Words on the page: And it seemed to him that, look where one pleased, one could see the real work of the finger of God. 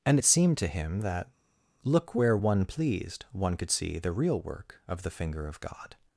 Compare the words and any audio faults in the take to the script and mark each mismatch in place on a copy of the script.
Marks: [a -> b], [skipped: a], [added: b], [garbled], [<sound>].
And it seemed to him that, look where one pleased, one could see the real work of the finger of God.